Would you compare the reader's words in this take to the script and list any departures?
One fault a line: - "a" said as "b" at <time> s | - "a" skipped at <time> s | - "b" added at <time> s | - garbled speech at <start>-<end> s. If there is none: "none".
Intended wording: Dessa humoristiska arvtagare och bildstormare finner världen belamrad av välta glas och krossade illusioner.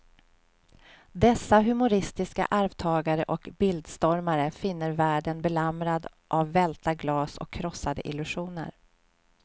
none